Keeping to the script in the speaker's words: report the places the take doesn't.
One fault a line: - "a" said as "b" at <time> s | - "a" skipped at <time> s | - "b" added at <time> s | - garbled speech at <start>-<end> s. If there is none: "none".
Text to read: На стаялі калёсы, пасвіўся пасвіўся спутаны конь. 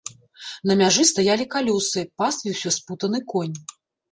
- "мяжы" added at 0.8 s
- "пасвіўся" skipped at 2.7 s